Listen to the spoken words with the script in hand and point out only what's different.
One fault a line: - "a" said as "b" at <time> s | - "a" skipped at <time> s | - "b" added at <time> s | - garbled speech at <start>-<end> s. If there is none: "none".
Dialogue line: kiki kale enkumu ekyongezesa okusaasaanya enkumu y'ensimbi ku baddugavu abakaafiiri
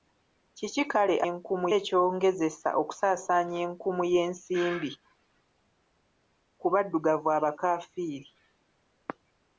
none